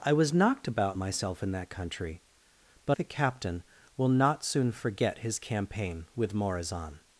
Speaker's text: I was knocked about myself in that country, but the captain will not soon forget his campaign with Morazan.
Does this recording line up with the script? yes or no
yes